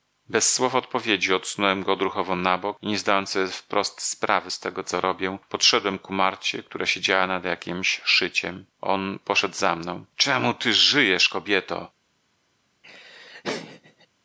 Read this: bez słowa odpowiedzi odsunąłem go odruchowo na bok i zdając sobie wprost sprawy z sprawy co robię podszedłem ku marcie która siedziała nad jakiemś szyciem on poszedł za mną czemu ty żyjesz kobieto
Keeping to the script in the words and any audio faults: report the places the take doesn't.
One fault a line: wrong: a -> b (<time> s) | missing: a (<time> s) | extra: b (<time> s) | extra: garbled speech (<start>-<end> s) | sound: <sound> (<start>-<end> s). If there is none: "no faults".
extra: nie (2.9 s)
wrong: sprawy -> tego (4.6 s)
sound: laugh (12.8-14.1 s)